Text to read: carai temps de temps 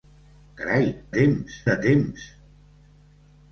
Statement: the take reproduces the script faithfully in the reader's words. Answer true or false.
true